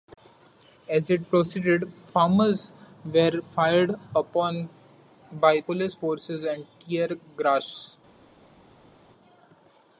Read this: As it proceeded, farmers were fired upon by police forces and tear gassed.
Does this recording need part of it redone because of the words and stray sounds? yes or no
no